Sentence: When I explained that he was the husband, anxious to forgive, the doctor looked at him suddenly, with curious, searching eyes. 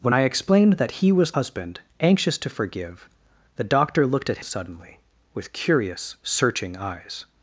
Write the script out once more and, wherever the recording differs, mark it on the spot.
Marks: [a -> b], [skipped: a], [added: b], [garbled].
When I explained that he was [skipped: the] husband, anxious to forgive, the doctor looked at [skipped: him] suddenly, with curious, searching eyes.